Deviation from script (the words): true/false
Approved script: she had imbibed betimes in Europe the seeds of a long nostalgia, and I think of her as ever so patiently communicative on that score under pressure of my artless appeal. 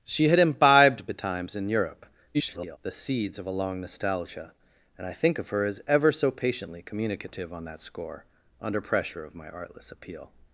true